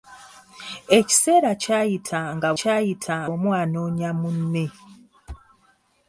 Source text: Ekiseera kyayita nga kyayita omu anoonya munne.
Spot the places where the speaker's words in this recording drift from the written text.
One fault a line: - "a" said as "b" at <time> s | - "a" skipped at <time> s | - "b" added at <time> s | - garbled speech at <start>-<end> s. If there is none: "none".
none